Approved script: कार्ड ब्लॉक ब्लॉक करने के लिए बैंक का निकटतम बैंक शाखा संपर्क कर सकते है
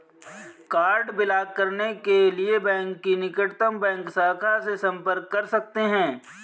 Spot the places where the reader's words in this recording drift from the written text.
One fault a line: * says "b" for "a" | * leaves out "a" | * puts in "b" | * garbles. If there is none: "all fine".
* leaves out "ब्लॉक"
* says "की" for "का"
* puts in "से"